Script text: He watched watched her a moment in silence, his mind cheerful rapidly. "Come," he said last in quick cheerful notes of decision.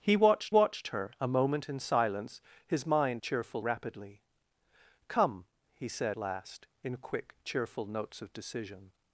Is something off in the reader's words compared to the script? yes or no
no